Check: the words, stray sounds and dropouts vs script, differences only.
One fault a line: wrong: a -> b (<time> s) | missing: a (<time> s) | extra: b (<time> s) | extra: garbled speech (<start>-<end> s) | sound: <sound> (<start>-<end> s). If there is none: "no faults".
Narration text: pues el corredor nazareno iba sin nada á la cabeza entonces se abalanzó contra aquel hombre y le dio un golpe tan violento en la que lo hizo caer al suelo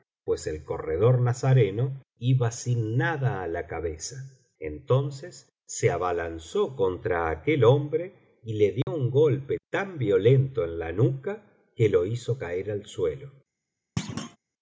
sound: dropout (8.8-8.9 s)
extra: nuca (10.9 s)
sound: thud (14.0-14.4 s)